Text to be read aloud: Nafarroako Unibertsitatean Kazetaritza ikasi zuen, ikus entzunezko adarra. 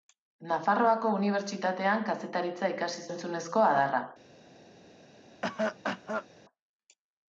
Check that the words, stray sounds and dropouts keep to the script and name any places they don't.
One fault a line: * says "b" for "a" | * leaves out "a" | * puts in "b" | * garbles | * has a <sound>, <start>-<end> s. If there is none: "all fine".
* leaves out "zuen ikus"
* has a cough, 5.4-6.3 s